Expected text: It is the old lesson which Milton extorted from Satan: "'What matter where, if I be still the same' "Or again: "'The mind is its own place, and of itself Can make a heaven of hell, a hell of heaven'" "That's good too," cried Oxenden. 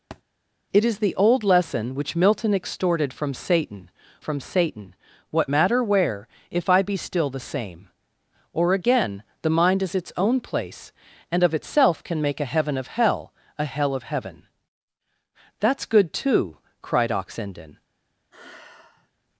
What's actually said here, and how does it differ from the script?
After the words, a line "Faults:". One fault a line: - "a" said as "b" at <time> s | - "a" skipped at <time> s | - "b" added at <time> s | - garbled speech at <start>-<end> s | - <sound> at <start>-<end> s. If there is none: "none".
It is the old lesson which Milton extorted from Satan from Satan: "'What matter where, if I be still the same' "Or again: "'The mind is its own place, and of itself Can make a heaven of hell, a hell of heaven'" "That's good too," cried Oxenden.
Faults:
- thud at 0.1-0.2 s
- "from Satan" added at 4.2 s
- sigh at 18.3-19.1 s